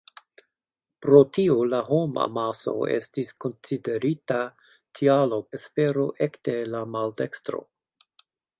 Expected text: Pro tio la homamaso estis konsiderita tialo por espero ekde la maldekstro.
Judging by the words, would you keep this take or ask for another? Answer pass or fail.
fail